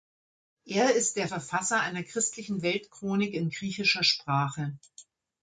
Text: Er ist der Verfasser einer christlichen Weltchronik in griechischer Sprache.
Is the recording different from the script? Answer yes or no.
no